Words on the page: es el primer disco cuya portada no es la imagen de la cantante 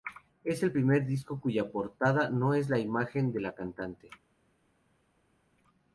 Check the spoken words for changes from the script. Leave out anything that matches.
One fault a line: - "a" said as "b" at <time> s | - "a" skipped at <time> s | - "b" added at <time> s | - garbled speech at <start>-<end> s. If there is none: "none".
none